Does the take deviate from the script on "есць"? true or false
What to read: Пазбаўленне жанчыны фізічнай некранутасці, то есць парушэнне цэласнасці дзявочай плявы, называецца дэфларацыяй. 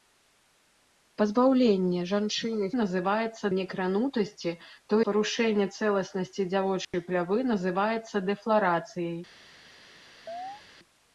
true